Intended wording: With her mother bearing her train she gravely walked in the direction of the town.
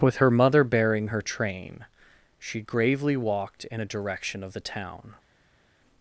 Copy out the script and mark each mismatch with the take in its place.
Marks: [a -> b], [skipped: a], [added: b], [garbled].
With her mother bearing her train she gravely walked in [the -> a] direction of the town.